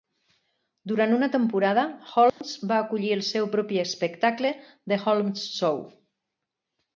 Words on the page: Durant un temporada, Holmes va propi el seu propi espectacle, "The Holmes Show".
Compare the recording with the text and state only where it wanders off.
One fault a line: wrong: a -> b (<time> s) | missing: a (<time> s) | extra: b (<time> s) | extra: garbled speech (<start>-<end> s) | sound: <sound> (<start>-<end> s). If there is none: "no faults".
wrong: un -> una (1.2 s)
sound: dropout (2.3-2.4 s)
wrong: propi -> acollir (2.9 s)